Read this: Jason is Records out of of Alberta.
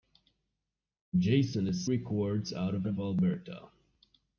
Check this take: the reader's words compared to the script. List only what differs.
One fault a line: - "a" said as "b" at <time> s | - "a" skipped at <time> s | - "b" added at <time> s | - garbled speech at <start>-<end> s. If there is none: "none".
none